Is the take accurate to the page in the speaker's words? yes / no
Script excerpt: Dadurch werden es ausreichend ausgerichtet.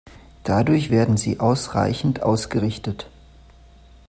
no